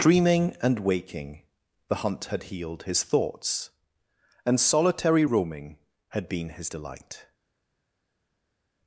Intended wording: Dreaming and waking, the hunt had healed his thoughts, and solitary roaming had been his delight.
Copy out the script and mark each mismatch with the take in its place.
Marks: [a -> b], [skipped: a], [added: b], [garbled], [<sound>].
Dreaming and waking, the hunt had healed his thoughts, and solitary roaming had been his delight.